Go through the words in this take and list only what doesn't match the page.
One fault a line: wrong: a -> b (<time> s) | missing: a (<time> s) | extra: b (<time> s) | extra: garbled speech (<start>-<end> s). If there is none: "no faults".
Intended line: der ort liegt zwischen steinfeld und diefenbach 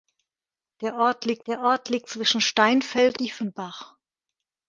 extra: der ort liegt (1.5 s)
missing: und (3.2 s)